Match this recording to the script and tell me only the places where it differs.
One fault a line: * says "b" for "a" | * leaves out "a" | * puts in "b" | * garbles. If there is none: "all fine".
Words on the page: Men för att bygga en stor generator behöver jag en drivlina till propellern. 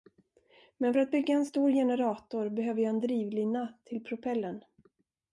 all fine